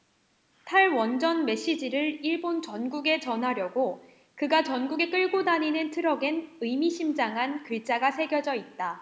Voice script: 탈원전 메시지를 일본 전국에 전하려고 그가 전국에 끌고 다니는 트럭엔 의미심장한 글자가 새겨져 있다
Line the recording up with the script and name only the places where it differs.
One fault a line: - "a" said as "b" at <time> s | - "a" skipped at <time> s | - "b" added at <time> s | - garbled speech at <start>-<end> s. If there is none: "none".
none